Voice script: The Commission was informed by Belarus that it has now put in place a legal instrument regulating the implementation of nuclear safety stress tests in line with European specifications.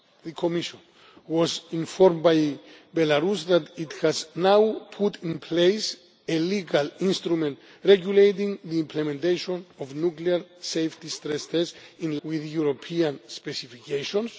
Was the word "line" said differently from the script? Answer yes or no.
yes